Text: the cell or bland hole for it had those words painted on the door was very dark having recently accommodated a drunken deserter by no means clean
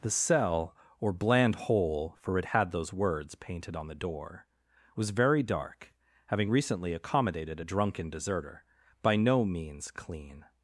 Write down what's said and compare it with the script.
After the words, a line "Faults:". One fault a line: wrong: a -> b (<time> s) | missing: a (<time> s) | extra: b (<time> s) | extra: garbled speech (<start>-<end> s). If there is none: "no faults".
the cell or bland hole for it had those words painted on the door was very dark having recently accommodated a drunken deserter by no means clean
Faults:
no faults